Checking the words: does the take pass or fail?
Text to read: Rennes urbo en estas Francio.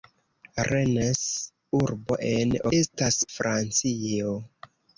pass